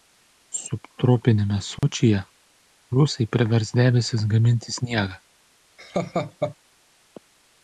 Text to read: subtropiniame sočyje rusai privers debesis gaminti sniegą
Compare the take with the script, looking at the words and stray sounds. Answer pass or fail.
fail